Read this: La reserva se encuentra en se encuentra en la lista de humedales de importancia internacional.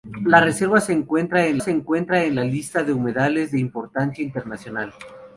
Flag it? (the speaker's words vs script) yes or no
no